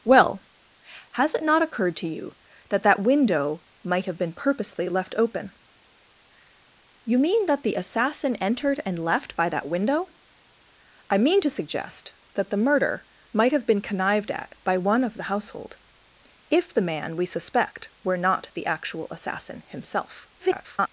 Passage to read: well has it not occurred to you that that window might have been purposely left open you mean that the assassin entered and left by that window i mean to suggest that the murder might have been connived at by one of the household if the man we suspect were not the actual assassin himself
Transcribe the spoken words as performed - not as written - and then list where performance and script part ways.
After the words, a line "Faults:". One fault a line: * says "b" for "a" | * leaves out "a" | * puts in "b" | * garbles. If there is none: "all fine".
well has it not occurred to you that that window might have been purposely left open you mean that the assassin entered and left by that window i mean to suggest that the murder might have been connived at by one of the household if the man we suspect were not the actual assassin himself [garbled]
Faults:
* garbles